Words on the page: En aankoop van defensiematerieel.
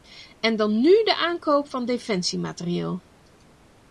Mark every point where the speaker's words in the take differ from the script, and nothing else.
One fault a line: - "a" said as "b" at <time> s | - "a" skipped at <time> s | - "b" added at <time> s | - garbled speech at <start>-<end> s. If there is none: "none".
- "dan nu de" added at 0.6 s